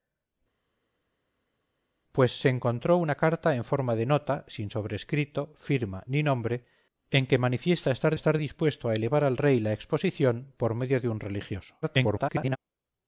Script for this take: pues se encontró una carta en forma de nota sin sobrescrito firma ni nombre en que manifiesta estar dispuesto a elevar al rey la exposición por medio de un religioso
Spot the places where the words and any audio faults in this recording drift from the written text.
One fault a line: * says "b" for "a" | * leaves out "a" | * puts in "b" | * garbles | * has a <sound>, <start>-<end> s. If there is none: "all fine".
* puts in "estar"
* garbles